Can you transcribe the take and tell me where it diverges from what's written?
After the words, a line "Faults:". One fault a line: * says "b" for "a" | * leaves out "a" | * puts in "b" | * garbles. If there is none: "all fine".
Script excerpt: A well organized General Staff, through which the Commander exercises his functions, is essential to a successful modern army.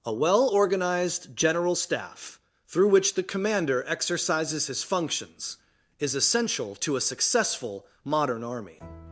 A well organized General Staff, through which the Commander exercises his functions, is essential to a successful modern army.
Faults:
all fine